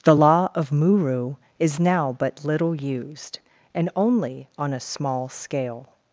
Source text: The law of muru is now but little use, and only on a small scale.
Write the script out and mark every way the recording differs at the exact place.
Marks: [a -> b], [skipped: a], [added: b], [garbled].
The law of muru is now but little [use, -> used] and only on a small scale.